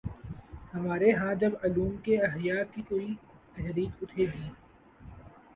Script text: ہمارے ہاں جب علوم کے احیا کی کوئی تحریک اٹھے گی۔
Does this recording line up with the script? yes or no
yes